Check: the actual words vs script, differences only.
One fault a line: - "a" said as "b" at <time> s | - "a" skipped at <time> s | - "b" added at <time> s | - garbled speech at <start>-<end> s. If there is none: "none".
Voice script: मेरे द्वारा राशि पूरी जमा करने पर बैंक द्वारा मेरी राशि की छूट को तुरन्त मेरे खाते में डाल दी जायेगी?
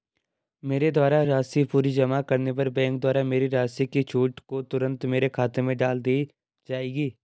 none